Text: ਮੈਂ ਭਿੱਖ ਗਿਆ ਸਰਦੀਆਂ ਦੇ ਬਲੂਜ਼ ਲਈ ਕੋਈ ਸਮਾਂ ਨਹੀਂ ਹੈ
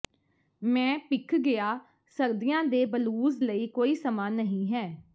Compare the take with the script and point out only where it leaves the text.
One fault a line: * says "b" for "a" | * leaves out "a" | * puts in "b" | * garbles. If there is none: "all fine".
all fine